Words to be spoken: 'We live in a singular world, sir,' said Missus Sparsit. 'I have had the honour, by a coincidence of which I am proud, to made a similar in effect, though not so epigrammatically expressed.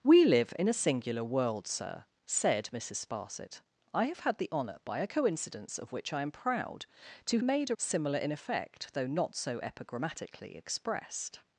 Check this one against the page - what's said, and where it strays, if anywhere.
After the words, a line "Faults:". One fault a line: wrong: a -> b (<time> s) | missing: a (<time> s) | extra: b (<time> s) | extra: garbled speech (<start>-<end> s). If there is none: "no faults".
'We live in a singular world, sir,' said Missus Sparsit. 'I have had the honour, by a coincidence of which I am proud, to made a similar in effect, though not so epigrammatically expressed.
Faults:
no faults